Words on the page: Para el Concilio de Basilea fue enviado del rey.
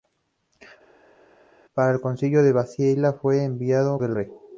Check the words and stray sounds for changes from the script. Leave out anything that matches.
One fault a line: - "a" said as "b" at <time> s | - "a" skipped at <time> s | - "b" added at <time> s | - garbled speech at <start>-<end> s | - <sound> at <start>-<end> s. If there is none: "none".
none